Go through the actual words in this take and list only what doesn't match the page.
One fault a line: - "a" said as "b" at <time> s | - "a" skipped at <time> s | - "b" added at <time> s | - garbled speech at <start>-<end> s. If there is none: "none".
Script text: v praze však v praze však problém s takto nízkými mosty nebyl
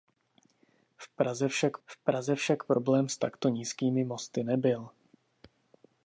none